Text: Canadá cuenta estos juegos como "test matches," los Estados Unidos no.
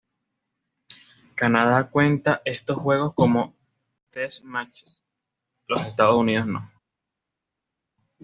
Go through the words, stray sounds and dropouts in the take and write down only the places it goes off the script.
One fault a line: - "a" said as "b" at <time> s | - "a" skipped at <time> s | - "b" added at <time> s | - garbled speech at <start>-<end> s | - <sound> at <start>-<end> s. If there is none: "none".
none